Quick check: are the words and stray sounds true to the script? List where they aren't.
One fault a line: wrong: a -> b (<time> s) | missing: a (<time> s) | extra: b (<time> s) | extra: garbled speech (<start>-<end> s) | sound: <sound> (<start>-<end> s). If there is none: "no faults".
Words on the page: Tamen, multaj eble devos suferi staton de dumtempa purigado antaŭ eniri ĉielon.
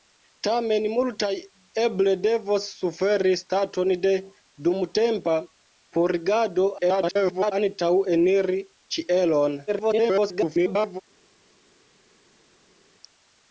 extra: garbled speech (6.8-7.5 s)
extra: garbled speech (9.7-11.0 s)